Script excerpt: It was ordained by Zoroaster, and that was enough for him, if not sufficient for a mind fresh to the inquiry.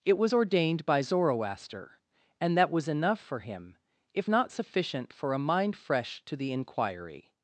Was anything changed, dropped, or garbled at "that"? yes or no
no